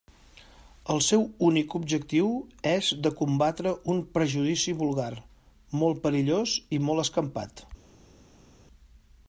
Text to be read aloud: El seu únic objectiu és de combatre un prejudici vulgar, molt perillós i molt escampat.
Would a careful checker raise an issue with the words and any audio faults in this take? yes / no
no